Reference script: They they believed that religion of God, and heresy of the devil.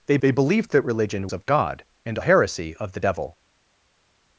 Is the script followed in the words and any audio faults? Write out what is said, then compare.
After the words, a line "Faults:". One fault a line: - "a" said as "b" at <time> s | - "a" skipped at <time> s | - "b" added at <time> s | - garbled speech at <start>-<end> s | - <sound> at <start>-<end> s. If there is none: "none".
They they believed that religion of God, and heresy of the devil.
Faults:
none